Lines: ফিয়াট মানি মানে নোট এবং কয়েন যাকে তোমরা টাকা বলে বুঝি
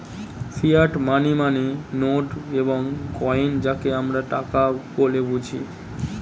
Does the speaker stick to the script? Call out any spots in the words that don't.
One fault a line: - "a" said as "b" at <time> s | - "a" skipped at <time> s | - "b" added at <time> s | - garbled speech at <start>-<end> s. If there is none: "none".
- "তোমরা" said as "আমরা" at 4.0 s